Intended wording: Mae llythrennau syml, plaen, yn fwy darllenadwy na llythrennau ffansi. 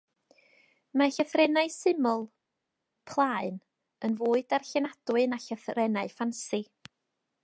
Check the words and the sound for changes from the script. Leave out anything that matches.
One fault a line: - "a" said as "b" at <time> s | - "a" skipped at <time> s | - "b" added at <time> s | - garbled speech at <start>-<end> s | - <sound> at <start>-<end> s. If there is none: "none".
none